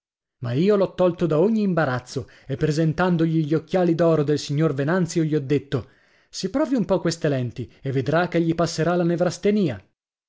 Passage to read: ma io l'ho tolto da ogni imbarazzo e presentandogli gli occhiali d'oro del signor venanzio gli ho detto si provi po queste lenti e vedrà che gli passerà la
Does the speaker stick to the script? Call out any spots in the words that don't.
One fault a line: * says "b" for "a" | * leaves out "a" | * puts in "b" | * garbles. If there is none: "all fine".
* puts in "un"